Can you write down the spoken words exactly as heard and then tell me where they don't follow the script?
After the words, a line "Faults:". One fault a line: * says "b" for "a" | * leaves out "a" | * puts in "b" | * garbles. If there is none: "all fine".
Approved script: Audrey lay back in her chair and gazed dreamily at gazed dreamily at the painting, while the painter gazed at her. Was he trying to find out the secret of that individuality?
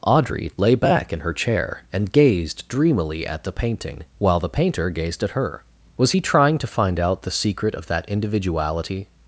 Audrey lay back in her chair and gazed dreamily at the painting, while the painter gazed at her. Was he trying to find out the secret of that individuality?
Faults:
* leaves out "gazed dreamily at"